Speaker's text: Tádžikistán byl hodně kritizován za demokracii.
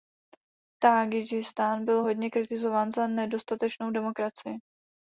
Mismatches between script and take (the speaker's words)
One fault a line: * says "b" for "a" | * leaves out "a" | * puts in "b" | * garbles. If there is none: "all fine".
* puts in "nedostatečnou"